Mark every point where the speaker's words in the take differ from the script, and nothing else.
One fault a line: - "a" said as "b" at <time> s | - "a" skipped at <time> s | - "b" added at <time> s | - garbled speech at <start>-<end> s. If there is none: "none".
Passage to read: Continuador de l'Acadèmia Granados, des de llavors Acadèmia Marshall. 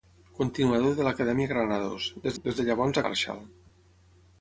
- "des" added at 2.4 s
- "Acadèmia" skipped at 3.0 s